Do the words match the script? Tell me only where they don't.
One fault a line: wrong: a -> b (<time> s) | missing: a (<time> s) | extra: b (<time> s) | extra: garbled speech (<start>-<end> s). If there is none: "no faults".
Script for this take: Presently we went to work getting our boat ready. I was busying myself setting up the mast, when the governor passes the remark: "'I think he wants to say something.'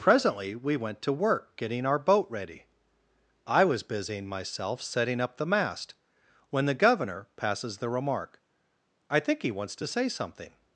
no faults